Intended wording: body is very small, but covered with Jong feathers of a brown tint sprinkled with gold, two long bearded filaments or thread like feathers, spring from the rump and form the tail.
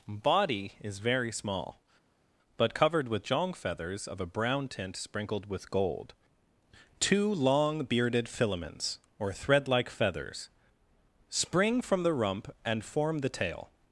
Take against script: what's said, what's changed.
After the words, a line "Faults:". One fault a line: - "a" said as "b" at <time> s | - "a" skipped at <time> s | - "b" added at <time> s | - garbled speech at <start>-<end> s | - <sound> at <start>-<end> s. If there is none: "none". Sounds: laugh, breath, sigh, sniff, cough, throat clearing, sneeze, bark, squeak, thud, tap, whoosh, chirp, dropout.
body is very small, but covered with Jong feathers of a brown tint sprinkled with gold, two long bearded filaments or thread like feathers, spring from the rump and form the tail.
Faults:
none